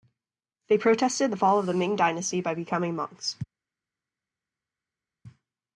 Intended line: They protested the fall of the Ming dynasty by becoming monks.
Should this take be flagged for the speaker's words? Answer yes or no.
no